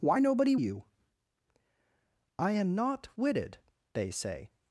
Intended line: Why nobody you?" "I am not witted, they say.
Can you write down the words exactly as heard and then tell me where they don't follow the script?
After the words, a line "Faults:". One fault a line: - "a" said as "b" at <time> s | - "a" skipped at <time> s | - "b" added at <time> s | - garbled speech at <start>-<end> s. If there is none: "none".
Why nobody you?" "I am not witted, they say.
Faults:
none